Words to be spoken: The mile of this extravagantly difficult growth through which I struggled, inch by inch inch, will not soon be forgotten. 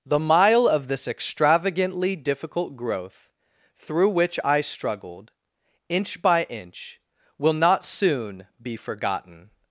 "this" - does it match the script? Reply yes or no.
yes